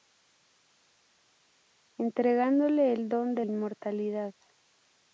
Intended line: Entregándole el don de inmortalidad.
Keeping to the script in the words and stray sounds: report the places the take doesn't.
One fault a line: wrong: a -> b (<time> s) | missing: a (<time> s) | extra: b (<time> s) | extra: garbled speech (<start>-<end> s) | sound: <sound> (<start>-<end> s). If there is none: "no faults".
no faults